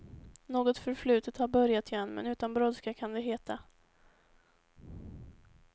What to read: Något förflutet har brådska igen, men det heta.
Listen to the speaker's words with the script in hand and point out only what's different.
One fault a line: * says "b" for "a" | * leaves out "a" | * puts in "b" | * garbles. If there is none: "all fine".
* says "börjat" for "brådska"
* puts in "utan brådska kan"